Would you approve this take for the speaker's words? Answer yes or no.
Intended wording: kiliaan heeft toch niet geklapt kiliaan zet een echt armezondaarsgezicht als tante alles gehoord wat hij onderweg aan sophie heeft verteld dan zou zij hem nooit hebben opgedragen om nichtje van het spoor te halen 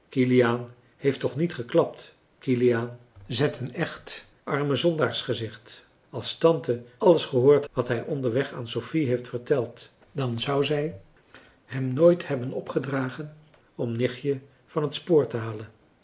yes